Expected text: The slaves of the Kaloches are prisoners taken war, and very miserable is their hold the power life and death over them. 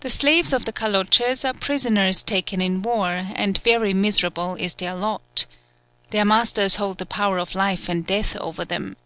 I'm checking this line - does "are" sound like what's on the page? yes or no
yes